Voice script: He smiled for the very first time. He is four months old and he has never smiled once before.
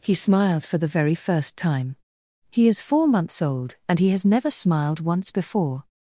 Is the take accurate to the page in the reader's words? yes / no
yes